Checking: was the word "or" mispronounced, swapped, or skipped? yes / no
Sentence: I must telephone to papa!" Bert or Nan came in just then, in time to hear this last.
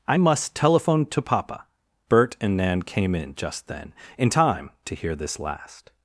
yes